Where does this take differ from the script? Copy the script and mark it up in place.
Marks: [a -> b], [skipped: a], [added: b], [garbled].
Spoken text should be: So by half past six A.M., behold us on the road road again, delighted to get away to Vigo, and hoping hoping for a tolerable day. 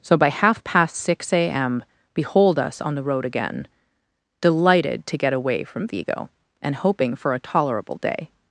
So by half past six A.M., behold us on the road [skipped: road] again, delighted to get away [to -> from] Vigo, and hoping [skipped: hoping] for a tolerable day.